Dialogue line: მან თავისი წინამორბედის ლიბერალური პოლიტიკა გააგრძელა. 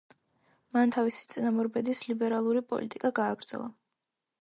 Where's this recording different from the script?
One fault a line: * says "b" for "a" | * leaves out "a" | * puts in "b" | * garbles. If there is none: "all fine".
all fine